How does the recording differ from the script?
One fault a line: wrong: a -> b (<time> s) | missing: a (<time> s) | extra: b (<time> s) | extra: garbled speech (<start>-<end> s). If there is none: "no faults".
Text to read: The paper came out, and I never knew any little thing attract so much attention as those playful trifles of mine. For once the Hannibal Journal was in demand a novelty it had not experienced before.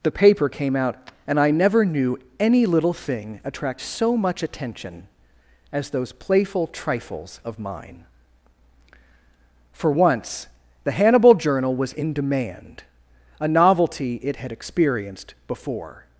missing: not (14.5 s)